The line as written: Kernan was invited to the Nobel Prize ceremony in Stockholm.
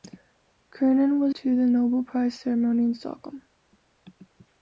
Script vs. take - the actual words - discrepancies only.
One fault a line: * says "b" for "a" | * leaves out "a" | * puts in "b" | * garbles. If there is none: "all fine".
* leaves out "invited"